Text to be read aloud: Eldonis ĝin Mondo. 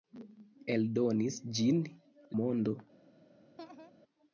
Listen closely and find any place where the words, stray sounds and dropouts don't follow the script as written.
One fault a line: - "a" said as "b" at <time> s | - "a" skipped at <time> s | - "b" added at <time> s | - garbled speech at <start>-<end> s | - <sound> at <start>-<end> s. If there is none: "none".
- laugh at 3.6-3.9 s